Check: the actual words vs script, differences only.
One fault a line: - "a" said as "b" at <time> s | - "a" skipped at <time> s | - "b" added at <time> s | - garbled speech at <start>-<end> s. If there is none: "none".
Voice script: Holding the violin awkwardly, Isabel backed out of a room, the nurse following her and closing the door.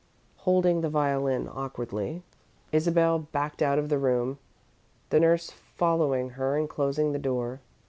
- "a" said as "the" at 3.9 s